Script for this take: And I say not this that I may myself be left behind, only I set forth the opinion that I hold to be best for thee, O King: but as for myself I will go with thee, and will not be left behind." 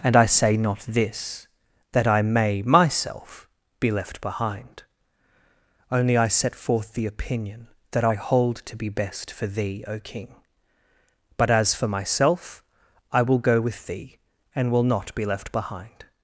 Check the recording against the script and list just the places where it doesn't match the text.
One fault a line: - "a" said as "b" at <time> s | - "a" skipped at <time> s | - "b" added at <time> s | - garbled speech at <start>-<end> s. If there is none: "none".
none